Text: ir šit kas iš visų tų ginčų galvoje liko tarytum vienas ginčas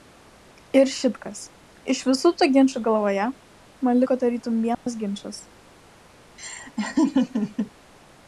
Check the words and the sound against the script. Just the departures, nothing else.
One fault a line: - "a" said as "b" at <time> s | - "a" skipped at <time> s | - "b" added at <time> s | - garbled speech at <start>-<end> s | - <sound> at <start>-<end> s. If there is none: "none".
- "man" added at 3.9 s
- dropout at 4.7-4.9 s
- laugh at 6.4-7.7 s